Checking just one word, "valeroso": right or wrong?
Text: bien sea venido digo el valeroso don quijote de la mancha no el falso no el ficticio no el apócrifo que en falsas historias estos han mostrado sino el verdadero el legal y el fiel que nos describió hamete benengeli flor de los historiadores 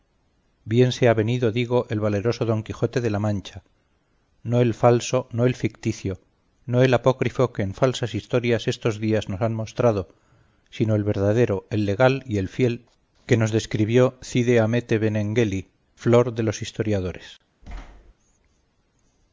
right